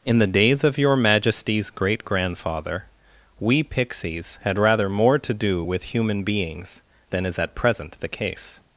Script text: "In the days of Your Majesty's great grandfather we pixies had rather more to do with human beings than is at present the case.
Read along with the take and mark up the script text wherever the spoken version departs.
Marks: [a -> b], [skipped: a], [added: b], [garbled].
"In the days of Your Majesty's great grandfather we pixies had rather more to do with human beings than is at present the case.